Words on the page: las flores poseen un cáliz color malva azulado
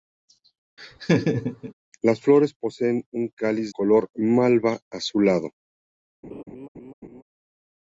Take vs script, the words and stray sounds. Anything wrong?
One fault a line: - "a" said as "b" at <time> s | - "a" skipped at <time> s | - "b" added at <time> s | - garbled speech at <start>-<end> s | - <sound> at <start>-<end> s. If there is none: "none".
- laugh at 0.8-1.7 s
- laugh at 6.2-7.2 s